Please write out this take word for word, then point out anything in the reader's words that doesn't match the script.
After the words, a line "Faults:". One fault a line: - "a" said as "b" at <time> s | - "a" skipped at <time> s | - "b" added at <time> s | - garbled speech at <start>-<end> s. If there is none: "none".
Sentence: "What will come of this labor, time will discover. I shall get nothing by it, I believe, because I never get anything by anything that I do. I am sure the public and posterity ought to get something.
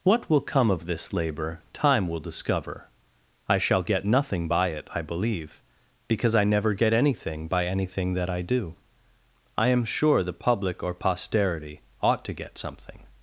"What will come of this labor, time will discover. I shall get nothing by it, I believe, because I never get anything by anything that I do. I am sure the public or posterity ought to get something.
Faults:
- "and" said as "or" at 10.8 s